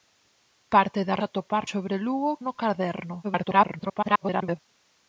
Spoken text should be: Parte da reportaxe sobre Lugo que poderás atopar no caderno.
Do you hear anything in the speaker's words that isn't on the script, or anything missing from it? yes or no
yes